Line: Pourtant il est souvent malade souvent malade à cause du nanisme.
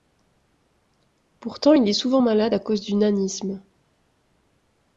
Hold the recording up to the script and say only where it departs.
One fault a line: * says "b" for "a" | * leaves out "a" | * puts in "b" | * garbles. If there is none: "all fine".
* leaves out "souvent malade"